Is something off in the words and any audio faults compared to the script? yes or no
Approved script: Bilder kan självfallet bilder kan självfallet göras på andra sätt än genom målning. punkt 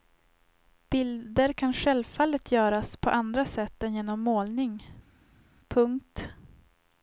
yes